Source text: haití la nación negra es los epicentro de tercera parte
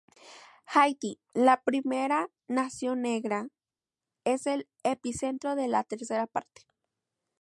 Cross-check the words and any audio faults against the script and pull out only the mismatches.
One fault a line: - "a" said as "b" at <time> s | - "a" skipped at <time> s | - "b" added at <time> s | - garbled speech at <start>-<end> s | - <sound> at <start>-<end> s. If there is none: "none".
- "primera" added at 1.6 s
- "los" said as "el" at 4.5 s
- "la" added at 5.7 s